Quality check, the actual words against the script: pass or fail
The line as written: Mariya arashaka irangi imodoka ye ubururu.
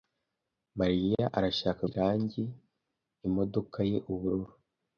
pass